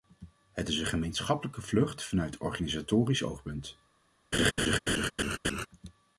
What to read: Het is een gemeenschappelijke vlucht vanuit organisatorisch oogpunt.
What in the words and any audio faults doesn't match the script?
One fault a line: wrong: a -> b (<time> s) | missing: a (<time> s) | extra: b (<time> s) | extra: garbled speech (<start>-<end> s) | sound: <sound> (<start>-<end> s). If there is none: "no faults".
sound: laugh (4.3-5.7 s)